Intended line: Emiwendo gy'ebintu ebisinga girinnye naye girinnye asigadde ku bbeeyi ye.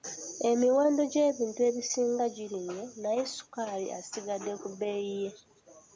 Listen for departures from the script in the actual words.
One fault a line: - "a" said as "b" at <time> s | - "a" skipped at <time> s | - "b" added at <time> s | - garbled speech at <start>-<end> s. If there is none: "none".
- "girinnye" said as "ssukaali" at 3.3 s